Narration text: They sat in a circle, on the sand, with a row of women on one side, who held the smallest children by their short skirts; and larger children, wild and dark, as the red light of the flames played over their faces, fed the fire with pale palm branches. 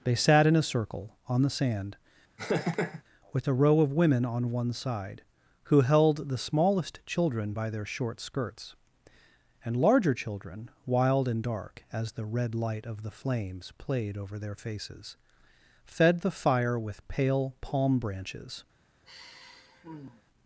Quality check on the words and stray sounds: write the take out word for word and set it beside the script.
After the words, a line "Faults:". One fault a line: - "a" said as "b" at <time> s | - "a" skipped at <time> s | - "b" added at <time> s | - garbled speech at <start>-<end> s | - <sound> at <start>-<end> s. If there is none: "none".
They sat in a circle, on the sand, with a row of women on one side, who held the smallest children by their short skirts; and larger children, wild and dark, as the red light of the flames played over their faces, fed the fire with pale palm branches.
Faults:
- laugh at 2.4-3.0 s
- sigh at 19.0-20.2 s